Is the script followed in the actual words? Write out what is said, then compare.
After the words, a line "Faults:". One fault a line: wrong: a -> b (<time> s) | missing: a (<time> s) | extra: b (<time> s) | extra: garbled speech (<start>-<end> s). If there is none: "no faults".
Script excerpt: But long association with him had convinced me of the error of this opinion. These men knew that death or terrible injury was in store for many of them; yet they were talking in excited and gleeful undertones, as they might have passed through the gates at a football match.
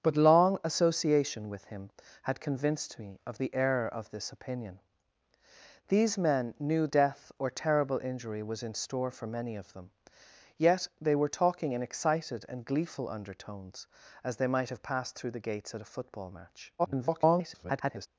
But long association with him had convinced me of the error of this opinion. These men knew death or terrible injury was in store for many of them; yet they were talking in excited and gleeful undertones, as they might have passed through the gates at a football match. [garbled]
Faults:
missing: that (6.9 s)
extra: garbled speech (16.8-18.1 s)